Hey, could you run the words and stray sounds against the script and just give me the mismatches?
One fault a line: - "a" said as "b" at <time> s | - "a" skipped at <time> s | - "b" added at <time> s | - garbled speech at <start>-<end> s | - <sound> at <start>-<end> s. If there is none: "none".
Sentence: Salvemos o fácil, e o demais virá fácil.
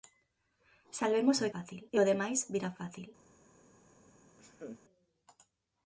- laugh at 4.4-4.8 s